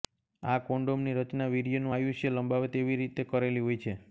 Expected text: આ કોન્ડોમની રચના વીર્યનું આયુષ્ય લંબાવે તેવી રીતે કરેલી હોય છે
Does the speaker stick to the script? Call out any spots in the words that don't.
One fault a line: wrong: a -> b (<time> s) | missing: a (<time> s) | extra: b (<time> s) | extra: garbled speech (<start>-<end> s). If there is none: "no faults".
no faults